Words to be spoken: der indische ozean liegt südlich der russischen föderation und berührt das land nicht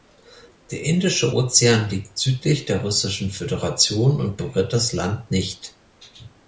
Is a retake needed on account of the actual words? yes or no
no